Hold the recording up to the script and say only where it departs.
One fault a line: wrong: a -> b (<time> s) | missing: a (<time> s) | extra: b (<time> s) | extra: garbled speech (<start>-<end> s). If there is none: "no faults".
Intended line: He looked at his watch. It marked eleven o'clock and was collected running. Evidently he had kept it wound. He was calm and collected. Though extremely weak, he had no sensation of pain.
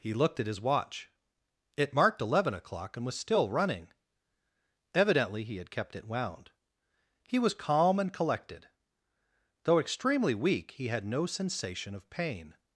wrong: collected -> still (3.2 s)